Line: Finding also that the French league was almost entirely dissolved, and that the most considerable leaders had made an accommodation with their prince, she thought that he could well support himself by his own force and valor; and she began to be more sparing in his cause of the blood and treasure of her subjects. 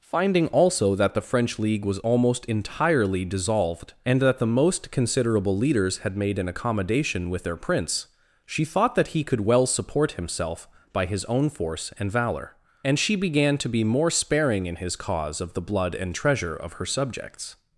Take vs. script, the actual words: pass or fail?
pass